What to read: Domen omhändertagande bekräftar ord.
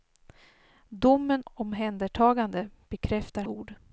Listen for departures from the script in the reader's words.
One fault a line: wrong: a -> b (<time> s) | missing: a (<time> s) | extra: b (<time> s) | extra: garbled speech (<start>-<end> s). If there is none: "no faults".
no faults